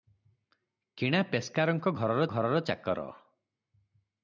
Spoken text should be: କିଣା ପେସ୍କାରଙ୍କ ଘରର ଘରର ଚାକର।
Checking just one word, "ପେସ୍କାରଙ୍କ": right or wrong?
right